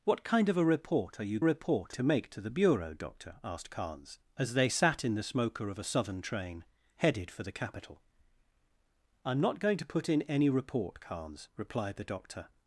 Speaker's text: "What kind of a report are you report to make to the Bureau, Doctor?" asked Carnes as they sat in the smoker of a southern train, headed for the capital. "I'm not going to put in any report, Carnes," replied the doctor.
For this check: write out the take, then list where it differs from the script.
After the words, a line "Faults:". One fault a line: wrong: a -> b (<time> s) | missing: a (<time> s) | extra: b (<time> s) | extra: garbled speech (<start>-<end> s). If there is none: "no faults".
"What kind of a report are you report to make to the Bureau, Doctor?" asked Carnes as they sat in the smoker of a southern train, headed for the capital. "I'm not going to put in any report, Carnes," replied the doctor.
Faults:
no faults